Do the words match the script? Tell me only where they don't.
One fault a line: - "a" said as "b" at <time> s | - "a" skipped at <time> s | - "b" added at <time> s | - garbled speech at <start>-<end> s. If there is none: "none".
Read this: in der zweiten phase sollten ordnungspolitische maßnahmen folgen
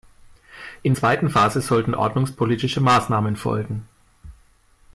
- "der" skipped at 0.9 s